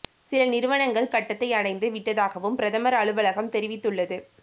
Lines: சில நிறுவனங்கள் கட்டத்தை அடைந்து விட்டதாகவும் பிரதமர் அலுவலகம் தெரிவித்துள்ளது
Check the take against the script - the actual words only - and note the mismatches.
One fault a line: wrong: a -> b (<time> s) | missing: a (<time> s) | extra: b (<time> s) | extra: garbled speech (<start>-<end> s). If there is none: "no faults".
no faults